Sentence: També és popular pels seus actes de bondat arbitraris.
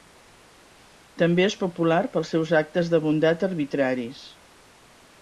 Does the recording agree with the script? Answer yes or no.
yes